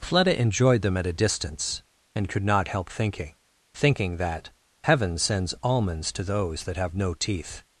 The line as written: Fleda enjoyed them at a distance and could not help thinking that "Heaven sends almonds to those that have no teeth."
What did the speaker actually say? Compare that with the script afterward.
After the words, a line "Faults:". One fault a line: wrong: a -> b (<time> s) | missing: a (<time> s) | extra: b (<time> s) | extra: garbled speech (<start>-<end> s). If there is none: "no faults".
Fleda enjoyed them at a distance and could not help thinking thinking that "Heaven sends almonds to those that have no teeth."
Faults:
extra: thinking (3.7 s)